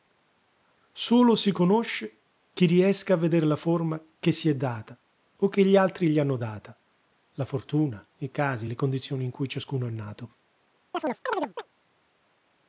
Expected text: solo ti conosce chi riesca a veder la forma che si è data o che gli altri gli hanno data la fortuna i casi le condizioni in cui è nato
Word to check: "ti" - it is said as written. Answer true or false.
false